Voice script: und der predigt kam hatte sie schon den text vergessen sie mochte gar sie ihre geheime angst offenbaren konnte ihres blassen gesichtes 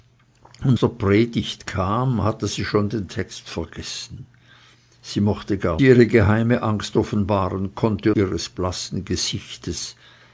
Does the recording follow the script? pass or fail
pass